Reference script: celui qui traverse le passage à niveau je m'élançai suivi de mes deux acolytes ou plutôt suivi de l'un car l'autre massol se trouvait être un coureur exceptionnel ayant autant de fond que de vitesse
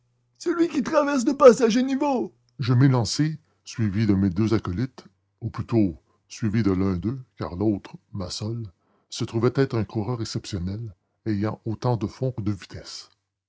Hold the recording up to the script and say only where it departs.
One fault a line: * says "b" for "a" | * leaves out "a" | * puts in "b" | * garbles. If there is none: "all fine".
* puts in "d'eux"